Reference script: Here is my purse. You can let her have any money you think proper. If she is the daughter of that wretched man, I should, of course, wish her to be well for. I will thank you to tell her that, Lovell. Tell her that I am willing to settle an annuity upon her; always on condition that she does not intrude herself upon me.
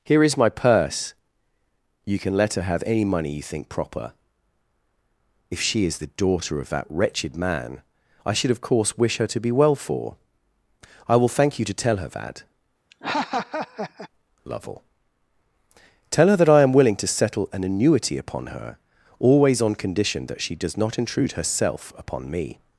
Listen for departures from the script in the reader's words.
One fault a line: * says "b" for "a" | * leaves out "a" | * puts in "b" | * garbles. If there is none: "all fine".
all fine